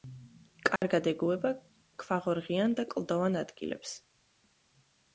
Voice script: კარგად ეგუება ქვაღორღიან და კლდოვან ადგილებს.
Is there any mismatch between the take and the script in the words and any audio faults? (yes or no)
yes